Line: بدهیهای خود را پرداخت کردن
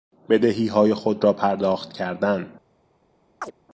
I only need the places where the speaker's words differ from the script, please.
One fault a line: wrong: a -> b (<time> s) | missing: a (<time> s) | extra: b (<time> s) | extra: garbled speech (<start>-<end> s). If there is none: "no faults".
no faults